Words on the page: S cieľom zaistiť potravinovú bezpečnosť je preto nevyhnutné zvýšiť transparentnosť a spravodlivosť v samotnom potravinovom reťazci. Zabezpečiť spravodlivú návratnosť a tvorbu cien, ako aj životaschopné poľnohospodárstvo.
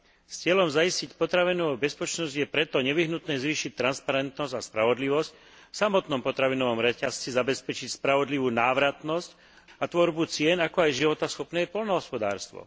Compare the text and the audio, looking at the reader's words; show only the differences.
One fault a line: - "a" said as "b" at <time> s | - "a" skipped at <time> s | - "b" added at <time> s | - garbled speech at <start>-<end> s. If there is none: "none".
none